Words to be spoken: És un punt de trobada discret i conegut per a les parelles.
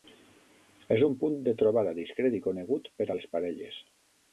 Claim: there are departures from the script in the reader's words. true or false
false